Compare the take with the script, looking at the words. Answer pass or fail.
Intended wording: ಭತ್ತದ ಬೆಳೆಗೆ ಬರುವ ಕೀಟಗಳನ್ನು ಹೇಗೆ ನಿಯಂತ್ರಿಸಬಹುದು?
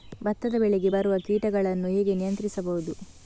pass